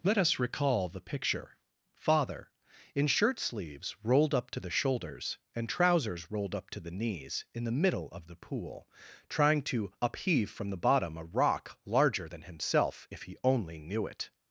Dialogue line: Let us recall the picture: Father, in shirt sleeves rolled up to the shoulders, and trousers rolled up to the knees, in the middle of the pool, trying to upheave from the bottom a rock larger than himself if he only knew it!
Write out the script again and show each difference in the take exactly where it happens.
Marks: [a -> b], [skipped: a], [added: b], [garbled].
Let us recall the picture: Father, in shirt sleeves rolled up to the shoulders, and trousers rolled up to the knees, in the middle of the pool, trying to upheave from the bottom a rock larger than himself if he only knew it!